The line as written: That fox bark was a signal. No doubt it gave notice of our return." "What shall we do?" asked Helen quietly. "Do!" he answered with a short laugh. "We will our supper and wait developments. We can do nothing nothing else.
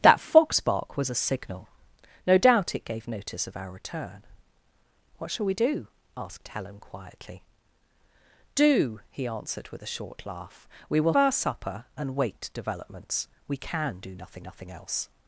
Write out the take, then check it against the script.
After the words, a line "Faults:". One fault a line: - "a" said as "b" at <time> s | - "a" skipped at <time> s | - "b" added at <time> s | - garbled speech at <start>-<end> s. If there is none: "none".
That fox bark was a signal. No doubt it gave notice of our return." "What shall we do?" asked Helen quietly. "Do!" he answered with a short laugh. "We will our supper and wait developments. We can do nothing nothing else.
Faults:
none